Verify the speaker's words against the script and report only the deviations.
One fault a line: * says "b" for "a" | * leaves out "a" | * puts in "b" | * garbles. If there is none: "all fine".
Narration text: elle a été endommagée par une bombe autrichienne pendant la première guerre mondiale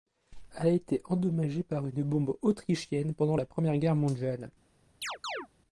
all fine